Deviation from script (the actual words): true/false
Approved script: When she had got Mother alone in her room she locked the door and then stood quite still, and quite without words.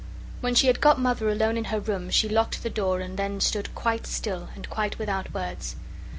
false